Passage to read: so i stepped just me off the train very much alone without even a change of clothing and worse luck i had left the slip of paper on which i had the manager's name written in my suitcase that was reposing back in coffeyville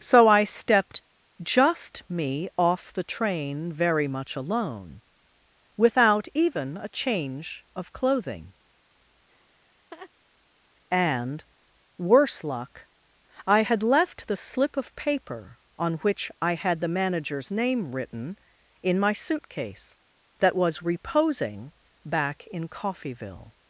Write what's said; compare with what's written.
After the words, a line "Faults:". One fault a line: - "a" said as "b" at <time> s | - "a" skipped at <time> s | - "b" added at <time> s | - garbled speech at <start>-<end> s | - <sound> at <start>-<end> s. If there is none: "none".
so i stepped just me off the train very much alone without even a change of clothing and worse luck i had left the slip of paper on which i had the manager's name written in my suitcase that was reposing back in coffeyville
Faults:
- laugh at 9.3-10.1 s